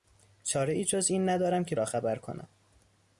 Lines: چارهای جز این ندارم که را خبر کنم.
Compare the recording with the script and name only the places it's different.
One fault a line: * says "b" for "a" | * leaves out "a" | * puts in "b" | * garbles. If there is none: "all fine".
all fine